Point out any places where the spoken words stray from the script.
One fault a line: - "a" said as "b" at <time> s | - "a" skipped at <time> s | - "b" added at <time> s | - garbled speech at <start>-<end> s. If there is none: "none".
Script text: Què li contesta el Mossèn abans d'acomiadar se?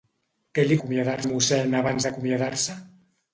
- "contesta" said as "d'acomiadar" at 0.8 s